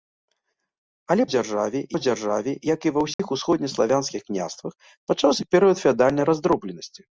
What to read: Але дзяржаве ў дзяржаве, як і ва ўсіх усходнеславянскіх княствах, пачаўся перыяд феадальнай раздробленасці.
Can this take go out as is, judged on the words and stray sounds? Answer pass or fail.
fail